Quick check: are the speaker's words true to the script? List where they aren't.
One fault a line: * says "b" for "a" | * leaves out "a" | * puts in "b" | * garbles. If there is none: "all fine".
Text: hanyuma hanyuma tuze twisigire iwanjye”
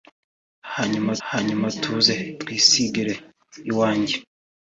all fine